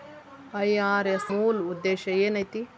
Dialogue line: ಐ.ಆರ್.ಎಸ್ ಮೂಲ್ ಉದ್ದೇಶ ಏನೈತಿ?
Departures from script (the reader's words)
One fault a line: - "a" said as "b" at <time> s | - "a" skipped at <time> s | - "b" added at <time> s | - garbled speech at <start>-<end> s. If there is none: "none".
none